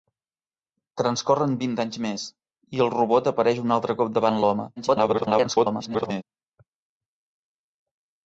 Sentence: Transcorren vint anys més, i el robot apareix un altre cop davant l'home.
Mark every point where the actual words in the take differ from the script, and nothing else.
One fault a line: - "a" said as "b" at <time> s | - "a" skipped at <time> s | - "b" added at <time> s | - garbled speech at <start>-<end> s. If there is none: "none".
- garbled speech at 4.8-6.2 s